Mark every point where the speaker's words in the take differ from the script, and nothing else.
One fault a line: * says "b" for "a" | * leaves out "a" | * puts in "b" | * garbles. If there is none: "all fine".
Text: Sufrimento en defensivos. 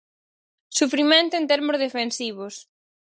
* puts in "termos"